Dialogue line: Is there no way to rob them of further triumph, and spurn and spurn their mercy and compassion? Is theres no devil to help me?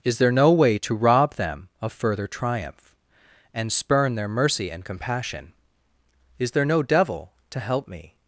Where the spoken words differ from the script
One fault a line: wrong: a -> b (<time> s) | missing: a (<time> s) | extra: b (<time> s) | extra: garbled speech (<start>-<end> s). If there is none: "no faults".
missing: and spurn (4.1 s)
wrong: theres -> there (6.5 s)